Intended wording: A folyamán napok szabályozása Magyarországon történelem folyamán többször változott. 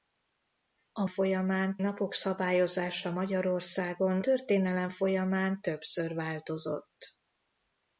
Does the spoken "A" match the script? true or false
true